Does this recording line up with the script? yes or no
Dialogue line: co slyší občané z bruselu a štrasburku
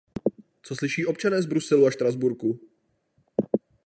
yes